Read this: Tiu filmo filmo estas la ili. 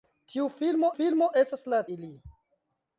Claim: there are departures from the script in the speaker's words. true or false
false